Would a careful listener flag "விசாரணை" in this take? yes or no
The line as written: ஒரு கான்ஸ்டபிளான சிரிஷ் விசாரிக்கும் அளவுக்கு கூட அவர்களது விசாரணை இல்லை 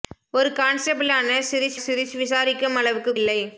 yes